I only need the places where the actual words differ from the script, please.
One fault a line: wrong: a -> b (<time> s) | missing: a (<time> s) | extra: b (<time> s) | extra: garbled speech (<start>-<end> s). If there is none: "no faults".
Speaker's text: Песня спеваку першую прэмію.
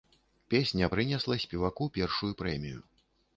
extra: прынесла (0.9 s)